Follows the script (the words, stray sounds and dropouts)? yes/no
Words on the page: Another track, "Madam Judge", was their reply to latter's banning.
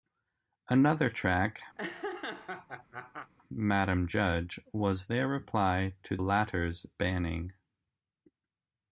no